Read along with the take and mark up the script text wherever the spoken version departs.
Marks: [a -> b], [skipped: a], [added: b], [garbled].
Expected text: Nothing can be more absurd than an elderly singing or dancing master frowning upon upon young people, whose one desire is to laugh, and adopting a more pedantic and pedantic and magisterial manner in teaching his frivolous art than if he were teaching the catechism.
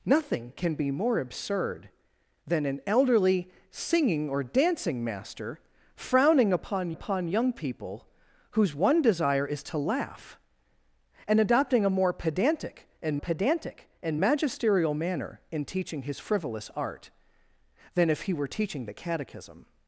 Nothing can be more absurd than an elderly singing or dancing master frowning upon upon young people, whose one desire is to laugh, and adopting a more pedantic and pedantic and magisterial manner in teaching his frivolous art than if he were teaching the catechism.